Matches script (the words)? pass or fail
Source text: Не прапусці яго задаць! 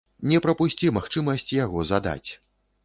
fail